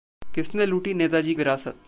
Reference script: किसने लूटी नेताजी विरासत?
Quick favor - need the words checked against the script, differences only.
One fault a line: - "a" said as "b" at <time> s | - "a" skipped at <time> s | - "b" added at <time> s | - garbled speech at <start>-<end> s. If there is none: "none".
none